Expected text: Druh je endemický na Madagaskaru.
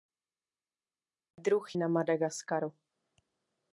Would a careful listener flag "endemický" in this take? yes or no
yes